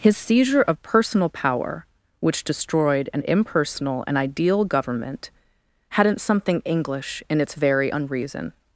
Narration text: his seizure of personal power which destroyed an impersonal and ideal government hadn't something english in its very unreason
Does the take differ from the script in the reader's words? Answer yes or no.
no